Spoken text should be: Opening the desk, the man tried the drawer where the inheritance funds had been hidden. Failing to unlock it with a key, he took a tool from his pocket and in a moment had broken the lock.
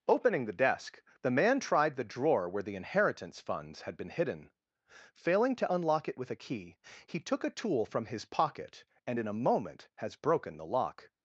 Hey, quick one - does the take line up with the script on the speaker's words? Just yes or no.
no